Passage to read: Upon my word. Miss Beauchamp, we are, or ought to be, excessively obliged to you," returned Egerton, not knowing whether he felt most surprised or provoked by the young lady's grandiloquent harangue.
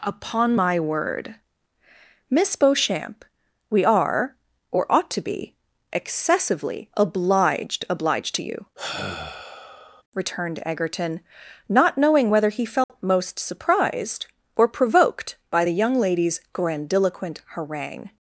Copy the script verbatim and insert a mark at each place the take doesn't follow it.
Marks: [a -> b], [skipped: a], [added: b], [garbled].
Upon my word. Miss Beauchamp, we are, or ought to be, excessively obliged [added: obliged] to you," returned Egerton, not knowing whether he felt most surprised or provoked by the young lady's grandiloquent harangue.